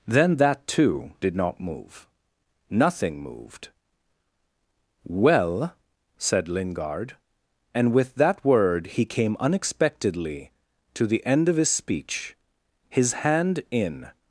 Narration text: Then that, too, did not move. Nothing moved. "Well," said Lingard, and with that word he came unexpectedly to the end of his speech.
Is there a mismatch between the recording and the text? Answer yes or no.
yes